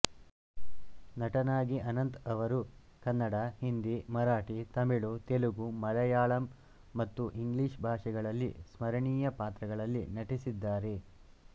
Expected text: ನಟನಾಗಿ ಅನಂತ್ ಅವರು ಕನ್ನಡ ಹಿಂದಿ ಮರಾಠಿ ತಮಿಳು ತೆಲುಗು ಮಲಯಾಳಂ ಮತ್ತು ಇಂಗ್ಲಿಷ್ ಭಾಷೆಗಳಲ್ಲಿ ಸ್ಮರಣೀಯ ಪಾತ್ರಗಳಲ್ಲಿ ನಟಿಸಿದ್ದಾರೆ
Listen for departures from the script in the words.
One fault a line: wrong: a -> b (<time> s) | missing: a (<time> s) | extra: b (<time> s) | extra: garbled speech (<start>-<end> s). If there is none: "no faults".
no faults